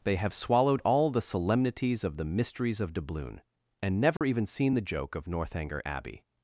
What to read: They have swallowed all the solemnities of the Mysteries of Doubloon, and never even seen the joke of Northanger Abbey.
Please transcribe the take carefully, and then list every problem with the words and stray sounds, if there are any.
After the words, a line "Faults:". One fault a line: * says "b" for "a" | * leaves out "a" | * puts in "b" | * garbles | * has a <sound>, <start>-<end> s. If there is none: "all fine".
They have swallowed all the solemnities of the Mysteries of Doubloon, and never even seen the joke of Northanger Abbey.
Faults:
* has a dropout, 4.2-4.2 s